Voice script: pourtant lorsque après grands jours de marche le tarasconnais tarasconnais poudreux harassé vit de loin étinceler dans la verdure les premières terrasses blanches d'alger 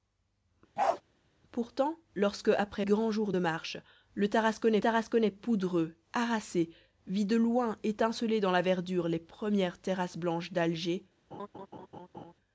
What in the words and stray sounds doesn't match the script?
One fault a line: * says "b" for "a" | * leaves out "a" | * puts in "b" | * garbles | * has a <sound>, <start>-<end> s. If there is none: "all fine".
* has a bark, 0.8-1.0 s
* has a laugh, 11.3-12.3 s